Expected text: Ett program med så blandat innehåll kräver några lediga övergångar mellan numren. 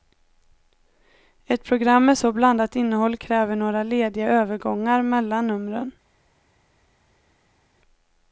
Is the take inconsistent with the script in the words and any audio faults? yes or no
no